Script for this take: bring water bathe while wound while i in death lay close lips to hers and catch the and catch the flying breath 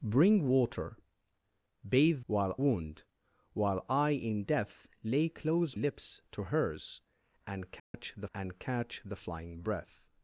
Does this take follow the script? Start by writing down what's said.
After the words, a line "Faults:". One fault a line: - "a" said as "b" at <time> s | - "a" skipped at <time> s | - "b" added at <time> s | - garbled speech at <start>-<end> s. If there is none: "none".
bring water bathe while wound while i in death lay close lips to hers and catch the and catch the flying breath
Faults:
none